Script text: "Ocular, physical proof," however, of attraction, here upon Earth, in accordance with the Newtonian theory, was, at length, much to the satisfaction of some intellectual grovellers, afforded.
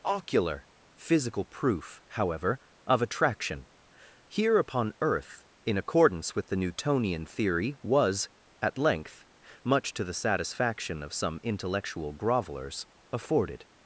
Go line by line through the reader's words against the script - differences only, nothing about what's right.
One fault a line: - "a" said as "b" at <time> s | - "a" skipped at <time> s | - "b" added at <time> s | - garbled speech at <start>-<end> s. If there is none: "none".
none